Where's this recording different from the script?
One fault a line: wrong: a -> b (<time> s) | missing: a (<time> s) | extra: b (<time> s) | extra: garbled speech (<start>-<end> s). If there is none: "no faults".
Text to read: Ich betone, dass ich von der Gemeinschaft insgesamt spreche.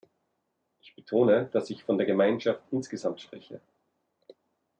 no faults